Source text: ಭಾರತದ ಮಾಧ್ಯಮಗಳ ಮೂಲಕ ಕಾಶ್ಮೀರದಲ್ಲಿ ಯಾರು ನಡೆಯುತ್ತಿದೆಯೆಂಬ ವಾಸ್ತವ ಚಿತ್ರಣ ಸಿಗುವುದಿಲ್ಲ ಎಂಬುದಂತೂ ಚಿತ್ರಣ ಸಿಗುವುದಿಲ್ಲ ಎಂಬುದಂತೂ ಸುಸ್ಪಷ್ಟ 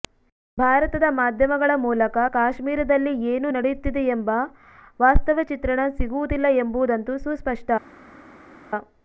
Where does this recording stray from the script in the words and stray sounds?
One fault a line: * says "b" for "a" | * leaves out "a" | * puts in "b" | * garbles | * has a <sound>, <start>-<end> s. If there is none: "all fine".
* says "ಏನು" for "ಯಾರು"
* leaves out "ಚಿತ್ರಣ ಸಿಗುವುದಿಲ್ಲ ಎಂಬುದಂತೂ"